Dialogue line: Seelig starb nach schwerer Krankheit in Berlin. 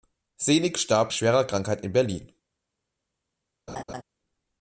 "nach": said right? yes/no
no